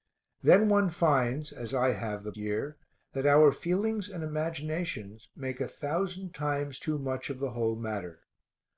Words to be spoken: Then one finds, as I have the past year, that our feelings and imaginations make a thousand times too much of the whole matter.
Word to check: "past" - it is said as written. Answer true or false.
false